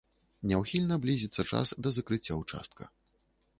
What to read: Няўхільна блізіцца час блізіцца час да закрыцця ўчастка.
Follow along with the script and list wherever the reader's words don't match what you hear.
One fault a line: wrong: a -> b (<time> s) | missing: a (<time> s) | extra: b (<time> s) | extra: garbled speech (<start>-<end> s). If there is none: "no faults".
missing: блізіцца час (1.8 s)